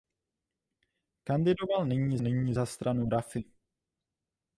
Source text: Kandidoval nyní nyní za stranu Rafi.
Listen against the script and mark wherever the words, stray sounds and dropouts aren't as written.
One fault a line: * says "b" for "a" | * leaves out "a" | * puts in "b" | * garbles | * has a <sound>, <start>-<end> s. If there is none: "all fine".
all fine